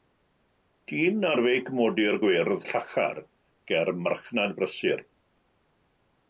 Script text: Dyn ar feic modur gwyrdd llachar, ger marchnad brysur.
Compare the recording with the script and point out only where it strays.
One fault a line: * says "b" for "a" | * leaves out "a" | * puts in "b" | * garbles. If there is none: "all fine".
all fine